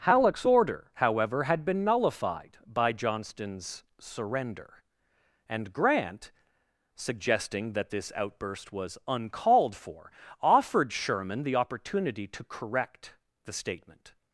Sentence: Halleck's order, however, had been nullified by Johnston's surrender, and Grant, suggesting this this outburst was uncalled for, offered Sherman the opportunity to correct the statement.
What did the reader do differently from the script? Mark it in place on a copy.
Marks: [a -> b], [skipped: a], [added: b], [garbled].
Halleck's order, however, had been nullified by Johnston's surrender, and Grant, suggesting [this -> that] this outburst was uncalled for, offered Sherman the opportunity to correct the statement.